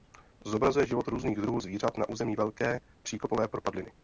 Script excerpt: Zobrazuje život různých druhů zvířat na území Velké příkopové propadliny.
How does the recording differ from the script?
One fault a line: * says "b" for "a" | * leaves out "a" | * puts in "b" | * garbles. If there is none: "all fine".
all fine